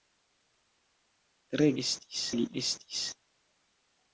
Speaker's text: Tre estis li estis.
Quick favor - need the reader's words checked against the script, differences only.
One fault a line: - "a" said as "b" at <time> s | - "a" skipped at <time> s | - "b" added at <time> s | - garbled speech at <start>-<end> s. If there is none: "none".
none